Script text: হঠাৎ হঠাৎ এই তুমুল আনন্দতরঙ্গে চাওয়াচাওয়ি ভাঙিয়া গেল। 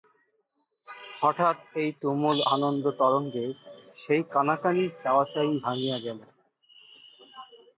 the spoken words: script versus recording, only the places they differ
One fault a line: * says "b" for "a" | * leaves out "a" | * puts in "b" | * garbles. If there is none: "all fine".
* leaves out "হঠাৎ"
* puts in "সেই কানাকানি"